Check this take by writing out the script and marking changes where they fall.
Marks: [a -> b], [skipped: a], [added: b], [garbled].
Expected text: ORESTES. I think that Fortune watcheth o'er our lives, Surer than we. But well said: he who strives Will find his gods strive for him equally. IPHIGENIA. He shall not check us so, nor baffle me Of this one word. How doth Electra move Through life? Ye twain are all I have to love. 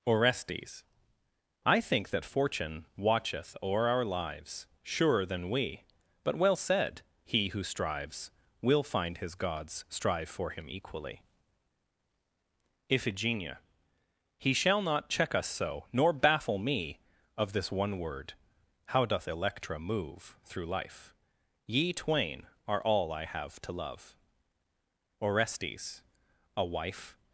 ORESTES. I think that Fortune watcheth o'er our lives, Surer than we. But well said: he who strives Will find his gods strive for him equally. IPHIGENIA. He shall not check us so, nor baffle me Of this one word. How doth Electra move Through life? Ye twain are all I have to love. [added: ORESTES A wife]